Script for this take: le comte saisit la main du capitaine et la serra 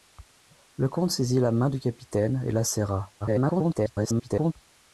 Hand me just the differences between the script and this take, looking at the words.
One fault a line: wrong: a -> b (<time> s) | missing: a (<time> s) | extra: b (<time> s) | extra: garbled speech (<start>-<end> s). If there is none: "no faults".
extra: garbled speech (3.2-4.5 s)